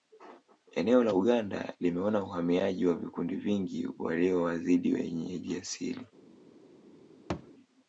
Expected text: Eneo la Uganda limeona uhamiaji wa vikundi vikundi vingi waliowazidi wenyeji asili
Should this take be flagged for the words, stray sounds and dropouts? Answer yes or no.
yes